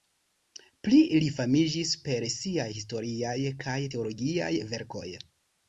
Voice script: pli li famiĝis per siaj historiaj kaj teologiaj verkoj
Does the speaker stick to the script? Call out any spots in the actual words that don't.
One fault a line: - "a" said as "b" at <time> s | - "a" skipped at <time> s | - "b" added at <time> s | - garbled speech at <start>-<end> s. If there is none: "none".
none